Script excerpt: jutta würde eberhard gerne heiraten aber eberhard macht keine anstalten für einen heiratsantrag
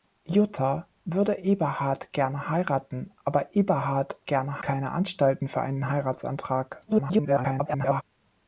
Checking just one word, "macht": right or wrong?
wrong